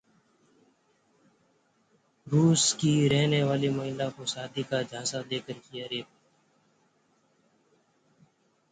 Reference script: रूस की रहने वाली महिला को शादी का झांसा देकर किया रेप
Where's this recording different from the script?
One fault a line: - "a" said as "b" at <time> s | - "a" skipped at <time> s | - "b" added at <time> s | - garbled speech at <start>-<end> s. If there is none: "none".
none